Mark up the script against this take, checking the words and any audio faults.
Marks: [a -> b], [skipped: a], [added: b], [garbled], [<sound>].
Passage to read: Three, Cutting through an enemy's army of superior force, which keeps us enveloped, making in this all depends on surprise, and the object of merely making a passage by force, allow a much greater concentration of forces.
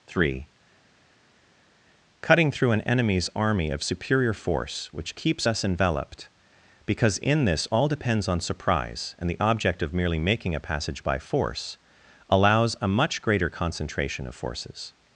Three, Cutting through an enemy's army of superior force, which keeps us enveloped, [making -> because] in this all depends on surprise, and the object of merely making a passage by force, [allow -> allows] a much greater concentration of forces.